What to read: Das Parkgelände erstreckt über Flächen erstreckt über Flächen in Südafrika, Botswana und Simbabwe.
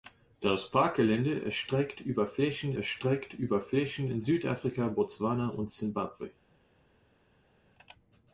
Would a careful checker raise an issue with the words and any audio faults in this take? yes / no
no